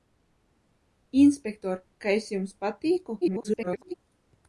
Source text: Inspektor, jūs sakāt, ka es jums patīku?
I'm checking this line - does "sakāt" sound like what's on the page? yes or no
no